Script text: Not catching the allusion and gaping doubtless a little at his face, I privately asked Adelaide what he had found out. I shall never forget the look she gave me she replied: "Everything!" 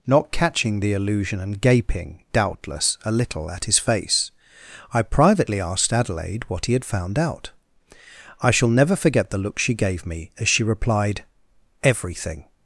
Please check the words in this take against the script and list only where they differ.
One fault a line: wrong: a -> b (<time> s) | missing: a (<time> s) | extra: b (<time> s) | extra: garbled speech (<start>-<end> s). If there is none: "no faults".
extra: as (10.4 s)